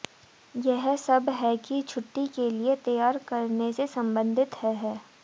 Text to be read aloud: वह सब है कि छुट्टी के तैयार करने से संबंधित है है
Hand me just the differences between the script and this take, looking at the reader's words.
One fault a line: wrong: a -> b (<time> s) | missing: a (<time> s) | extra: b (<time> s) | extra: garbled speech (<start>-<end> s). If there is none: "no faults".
wrong: वह -> यह (0.6 s)
extra: लिए (2.5 s)